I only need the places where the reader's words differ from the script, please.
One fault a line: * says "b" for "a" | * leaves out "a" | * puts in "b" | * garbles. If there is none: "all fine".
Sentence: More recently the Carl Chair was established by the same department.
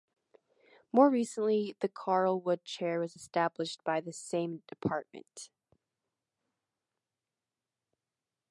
* puts in "Wood"